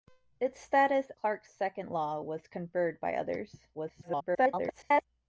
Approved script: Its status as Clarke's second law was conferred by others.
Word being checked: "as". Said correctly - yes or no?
no